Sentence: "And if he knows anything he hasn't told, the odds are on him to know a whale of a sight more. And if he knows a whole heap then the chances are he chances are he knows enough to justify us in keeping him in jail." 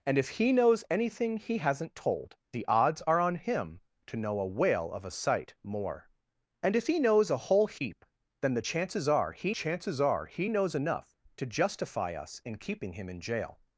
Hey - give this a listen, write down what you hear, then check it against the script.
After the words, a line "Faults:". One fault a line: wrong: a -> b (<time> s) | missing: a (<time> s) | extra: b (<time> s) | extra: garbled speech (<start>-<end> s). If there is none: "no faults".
"And if he knows anything he hasn't told, the odds are on him to know a whale of a sight more. And if he knows a whole heap then the chances are he chances are he knows enough to justify us in keeping him in jail."
Faults:
no faults